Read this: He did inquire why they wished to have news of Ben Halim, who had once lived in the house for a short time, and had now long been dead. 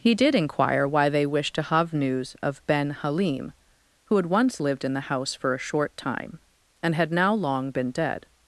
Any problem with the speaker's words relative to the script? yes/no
no